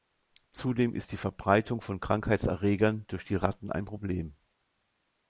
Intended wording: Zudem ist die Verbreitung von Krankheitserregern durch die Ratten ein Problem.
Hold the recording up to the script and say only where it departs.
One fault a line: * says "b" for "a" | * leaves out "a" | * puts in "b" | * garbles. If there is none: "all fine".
all fine